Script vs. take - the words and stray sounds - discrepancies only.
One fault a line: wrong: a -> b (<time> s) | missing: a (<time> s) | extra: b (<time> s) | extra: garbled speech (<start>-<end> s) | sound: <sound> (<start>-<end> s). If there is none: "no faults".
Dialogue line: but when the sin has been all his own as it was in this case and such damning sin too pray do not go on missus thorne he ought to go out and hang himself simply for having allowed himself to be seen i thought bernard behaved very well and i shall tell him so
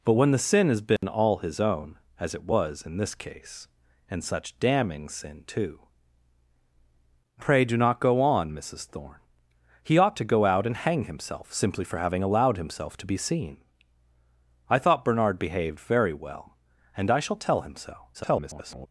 sound: dropout (1.0-1.0 s)
extra: garbled speech (18.1-18.9 s)